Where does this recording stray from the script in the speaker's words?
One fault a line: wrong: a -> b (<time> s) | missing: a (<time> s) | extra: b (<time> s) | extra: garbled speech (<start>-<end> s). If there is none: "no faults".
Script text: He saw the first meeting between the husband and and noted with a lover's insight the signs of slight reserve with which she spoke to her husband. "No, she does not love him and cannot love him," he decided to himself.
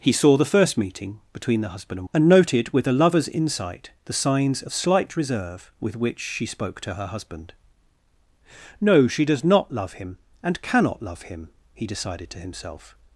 no faults